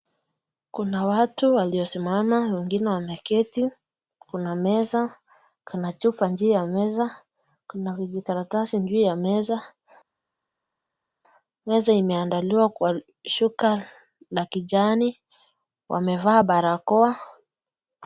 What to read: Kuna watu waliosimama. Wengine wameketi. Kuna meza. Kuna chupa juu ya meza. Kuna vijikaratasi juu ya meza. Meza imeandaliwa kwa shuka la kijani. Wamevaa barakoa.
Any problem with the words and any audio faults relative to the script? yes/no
no